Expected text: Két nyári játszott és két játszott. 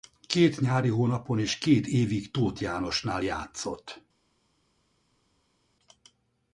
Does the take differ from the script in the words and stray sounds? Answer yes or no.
yes